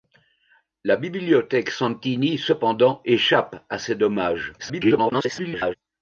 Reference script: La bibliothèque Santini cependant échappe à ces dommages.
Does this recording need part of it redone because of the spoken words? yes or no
yes